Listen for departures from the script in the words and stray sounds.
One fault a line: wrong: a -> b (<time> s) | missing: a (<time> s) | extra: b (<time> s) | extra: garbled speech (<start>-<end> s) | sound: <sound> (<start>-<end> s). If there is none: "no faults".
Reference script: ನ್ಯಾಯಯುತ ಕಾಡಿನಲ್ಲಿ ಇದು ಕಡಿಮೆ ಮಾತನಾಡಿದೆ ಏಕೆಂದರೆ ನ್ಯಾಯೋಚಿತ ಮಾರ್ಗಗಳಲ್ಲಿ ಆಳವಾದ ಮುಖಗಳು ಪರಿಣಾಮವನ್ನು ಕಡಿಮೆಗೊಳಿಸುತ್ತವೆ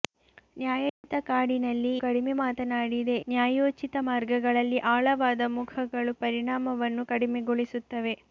sound: dropout (0.9-1.0 s)
missing: ಇದು (2.0 s)
missing: ಏಕೆಂದರೆ (3.2 s)